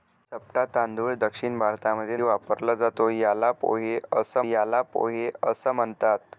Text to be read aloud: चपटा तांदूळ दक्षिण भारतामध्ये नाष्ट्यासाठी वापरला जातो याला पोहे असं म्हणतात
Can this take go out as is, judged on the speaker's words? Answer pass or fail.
fail